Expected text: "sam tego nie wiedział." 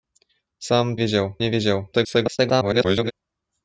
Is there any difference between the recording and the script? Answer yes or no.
yes